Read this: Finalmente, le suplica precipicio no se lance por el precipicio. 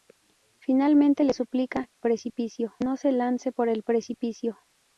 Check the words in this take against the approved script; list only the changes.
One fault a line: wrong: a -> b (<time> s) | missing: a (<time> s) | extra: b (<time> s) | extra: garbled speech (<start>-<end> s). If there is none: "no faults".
no faults